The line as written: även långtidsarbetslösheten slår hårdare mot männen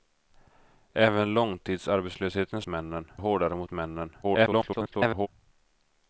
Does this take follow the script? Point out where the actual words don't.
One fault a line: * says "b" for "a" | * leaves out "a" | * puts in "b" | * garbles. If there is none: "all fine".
* says "männen" for "slår"
* garbles